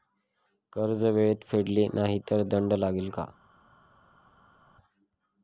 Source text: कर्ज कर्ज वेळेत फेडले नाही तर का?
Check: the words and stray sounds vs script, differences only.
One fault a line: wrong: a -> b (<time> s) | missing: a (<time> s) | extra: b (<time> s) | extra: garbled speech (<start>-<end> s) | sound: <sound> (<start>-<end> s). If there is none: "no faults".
missing: कर्ज (1.0 s)
extra: दंड लागेल (2.5 s)